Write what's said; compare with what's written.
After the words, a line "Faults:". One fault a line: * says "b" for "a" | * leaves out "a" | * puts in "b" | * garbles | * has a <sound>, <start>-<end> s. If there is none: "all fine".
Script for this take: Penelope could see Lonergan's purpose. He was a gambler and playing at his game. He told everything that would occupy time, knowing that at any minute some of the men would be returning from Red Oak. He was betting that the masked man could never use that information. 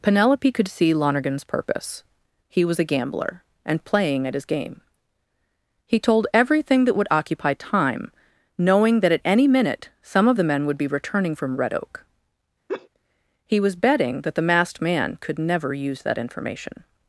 Penelope could see Lonergan's purpose. He was a gambler and playing at his game. He told everything that would occupy time, knowing that at any minute some of the men would be returning from Red Oak. He was betting that the masked man could never use that information.
Faults:
* has a laugh, 12.7-12.9 s